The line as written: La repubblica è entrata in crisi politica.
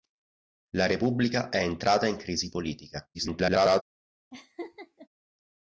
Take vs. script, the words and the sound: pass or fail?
fail